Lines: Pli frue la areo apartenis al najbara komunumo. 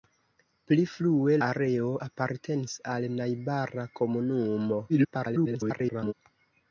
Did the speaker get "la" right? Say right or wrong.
wrong